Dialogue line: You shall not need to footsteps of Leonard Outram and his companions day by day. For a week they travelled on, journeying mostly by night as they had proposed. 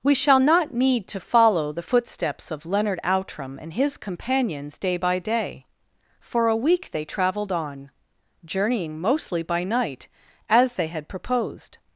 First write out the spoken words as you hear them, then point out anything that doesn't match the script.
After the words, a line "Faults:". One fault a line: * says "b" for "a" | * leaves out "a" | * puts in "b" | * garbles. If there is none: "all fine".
We shall not need to follow the footsteps of Leonard Outram and his companions day by day. For a week they travelled on, journeying mostly by night as they had proposed.
Faults:
* says "We" for "You"
* puts in "follow the"